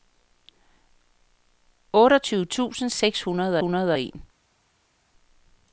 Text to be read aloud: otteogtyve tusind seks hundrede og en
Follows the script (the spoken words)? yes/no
no